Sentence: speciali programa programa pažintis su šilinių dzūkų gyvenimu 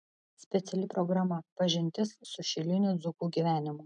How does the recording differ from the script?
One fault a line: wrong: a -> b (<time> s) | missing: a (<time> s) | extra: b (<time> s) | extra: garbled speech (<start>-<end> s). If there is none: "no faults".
missing: programa (1.4 s)